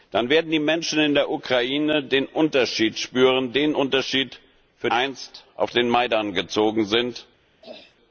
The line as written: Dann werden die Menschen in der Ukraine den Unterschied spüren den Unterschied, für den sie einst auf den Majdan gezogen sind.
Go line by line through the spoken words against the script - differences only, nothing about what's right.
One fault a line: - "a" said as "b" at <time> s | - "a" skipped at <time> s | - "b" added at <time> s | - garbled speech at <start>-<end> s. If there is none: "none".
- "den sie" skipped at 4.9 s